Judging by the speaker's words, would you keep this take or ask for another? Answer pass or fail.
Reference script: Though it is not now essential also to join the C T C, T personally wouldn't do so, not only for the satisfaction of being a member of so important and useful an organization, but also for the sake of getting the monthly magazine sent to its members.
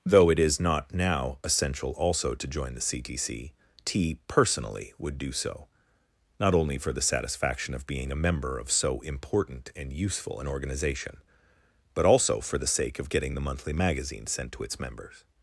fail